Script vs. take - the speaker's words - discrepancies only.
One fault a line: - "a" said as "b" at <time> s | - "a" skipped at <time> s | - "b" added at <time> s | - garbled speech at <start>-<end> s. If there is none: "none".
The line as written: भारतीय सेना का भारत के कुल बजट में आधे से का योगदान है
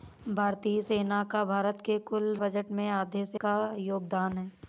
none